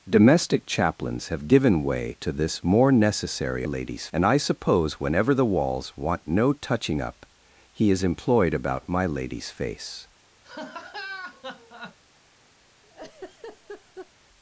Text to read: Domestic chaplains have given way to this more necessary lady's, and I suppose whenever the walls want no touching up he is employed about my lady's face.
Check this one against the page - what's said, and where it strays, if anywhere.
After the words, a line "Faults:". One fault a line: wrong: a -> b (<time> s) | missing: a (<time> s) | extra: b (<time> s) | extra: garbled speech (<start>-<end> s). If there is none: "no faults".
Domestic chaplains have given way to this more necessary lady's, and I suppose whenever the walls want no touching up he is employed about my lady's face.
Faults:
no faults